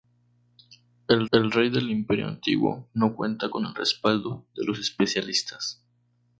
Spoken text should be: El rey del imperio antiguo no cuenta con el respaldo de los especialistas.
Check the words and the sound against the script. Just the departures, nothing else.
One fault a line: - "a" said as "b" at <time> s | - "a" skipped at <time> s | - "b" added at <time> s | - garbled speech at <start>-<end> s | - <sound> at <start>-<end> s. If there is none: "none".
- "el" added at 1.3 s